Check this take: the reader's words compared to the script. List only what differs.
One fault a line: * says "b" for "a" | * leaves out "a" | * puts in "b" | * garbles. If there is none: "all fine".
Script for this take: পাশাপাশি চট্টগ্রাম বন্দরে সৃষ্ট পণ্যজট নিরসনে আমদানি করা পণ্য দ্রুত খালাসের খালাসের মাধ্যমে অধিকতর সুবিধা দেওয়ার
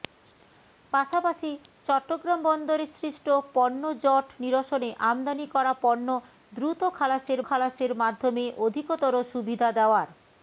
all fine